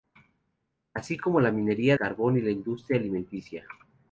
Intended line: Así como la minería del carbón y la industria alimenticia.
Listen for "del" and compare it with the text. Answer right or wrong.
wrong